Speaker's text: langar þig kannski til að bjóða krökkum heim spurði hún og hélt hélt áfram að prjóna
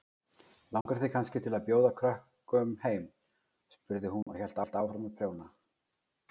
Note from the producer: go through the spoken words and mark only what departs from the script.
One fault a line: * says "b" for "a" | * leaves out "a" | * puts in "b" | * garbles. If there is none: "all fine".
all fine